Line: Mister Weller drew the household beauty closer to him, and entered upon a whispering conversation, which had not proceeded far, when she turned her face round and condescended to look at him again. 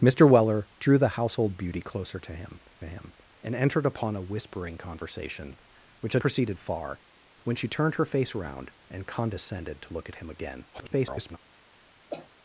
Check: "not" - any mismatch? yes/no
yes